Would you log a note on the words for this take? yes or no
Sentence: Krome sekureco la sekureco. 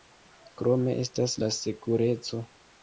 yes